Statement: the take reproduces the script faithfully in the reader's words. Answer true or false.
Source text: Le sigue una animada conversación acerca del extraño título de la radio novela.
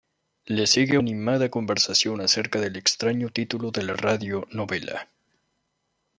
false